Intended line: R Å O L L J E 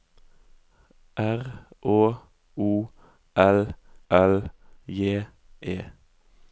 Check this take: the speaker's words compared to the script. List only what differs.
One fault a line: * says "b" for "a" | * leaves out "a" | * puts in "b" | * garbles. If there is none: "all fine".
all fine